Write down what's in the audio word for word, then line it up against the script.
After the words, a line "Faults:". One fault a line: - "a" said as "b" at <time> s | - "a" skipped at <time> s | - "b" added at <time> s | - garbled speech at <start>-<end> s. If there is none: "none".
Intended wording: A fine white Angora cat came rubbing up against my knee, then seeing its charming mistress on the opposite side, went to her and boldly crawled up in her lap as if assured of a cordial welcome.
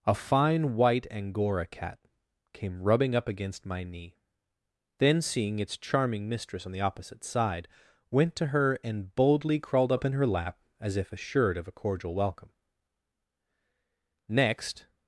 A fine white Angora cat came rubbing up against my knee, then seeing its charming mistress on the opposite side, went to her and boldly crawled up in her lap as if assured of a cordial welcome. Next
Faults:
- "Next" added at 14.3 s